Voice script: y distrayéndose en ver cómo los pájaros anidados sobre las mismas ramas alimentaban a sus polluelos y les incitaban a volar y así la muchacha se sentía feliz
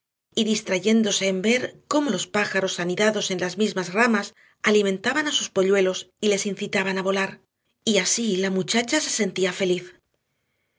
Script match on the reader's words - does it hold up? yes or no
no